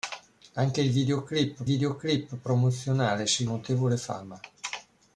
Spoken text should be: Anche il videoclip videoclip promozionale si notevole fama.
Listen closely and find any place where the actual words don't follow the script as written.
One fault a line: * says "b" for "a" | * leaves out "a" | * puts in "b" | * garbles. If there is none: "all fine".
all fine